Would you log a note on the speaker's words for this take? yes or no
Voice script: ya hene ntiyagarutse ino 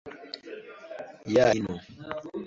yes